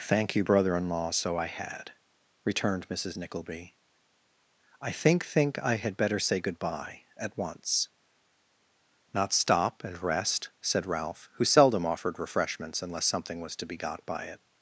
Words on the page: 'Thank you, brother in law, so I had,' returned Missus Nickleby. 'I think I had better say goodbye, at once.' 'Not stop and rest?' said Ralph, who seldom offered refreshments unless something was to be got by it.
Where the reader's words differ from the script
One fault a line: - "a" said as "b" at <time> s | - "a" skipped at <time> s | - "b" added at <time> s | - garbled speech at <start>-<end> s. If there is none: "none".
- "think" added at 5.3 s